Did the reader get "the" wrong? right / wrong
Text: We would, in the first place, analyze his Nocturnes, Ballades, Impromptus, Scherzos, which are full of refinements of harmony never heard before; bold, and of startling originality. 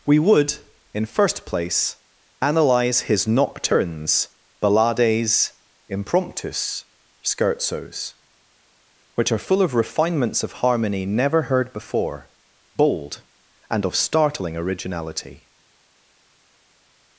wrong